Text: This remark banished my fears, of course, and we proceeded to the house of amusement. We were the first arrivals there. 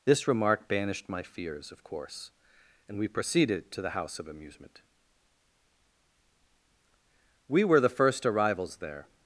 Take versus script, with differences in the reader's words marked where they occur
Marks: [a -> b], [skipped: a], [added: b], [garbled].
This remark banished my fears, of course, and we proceeded to the house of amusement. We were the first arrivals there.